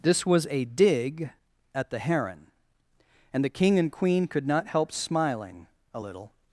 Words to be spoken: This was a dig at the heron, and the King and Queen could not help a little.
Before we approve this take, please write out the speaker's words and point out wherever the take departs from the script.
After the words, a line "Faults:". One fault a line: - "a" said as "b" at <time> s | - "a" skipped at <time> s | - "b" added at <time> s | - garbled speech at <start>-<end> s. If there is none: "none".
This was a dig at the heron, and the King and Queen could not help smiling a little.
Faults:
- "smiling" added at 4.9 s